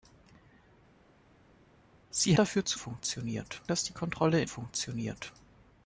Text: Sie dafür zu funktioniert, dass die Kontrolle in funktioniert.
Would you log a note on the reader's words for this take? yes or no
no